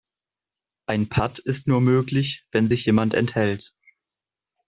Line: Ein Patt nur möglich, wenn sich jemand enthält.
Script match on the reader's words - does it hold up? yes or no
no